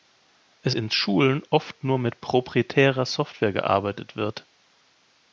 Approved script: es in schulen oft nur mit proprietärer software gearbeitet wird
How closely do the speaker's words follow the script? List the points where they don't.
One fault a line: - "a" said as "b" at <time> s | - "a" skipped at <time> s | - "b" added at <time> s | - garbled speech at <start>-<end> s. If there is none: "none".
none